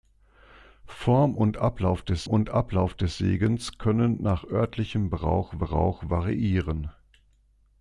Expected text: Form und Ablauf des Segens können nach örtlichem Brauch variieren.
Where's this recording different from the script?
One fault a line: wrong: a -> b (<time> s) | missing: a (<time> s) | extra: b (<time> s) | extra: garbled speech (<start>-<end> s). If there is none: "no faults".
extra: und Ablauf des (2.3 s)
extra: Brauch (5.6 s)